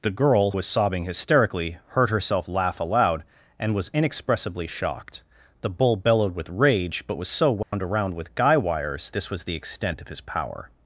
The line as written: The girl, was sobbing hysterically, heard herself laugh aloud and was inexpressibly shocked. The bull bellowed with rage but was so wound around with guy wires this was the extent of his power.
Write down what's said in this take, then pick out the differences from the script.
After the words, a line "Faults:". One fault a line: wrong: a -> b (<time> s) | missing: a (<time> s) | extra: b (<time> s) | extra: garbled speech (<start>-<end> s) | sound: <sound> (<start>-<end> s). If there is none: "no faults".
The girl, was sobbing hysterically, heard herself laugh aloud and was inexpressibly shocked. The bull bellowed with rage but was so wound around with guy wires this was the extent of his power.
Faults:
sound: dropout (7.6-7.7 s)